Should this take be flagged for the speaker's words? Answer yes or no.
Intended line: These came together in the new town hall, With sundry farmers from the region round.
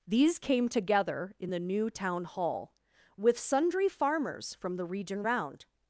no